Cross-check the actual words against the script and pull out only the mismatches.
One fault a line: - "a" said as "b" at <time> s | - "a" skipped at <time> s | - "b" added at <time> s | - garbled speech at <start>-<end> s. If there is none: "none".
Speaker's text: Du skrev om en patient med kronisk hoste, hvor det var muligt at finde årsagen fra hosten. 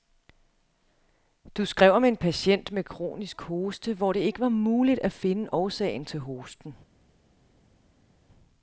- "ikke" added at 4.2 s
- "fra" said as "til" at 6.0 s